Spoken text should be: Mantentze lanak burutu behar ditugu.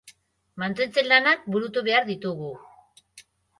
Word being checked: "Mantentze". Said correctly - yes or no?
yes